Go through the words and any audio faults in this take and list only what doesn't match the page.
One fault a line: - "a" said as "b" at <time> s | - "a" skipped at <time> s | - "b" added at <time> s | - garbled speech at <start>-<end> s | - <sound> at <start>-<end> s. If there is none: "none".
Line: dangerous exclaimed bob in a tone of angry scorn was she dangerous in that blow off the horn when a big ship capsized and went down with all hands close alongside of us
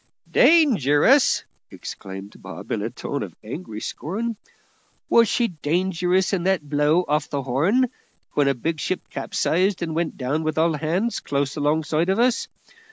none